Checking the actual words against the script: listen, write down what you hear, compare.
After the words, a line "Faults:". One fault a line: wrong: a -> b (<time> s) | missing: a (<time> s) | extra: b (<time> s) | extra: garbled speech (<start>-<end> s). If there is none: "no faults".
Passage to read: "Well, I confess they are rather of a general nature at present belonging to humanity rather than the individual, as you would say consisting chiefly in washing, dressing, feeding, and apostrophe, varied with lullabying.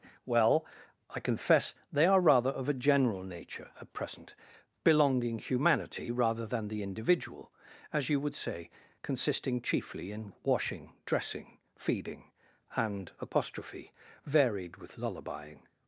"Well, I confess they are rather of a general nature at present belonging humanity rather than the individual, as you would say consisting chiefly in washing, dressing, feeding, and apostrophe, varied with lullabying.
Faults:
missing: to (5.4 s)